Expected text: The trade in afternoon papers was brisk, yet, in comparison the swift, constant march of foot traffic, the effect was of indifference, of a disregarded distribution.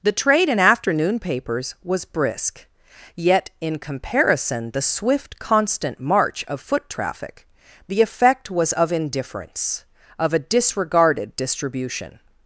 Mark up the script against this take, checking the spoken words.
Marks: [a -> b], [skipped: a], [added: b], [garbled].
The trade in afternoon papers was brisk, yet, in comparison the swift, constant march of foot traffic, the effect was of indifference, of a disregarded distribution.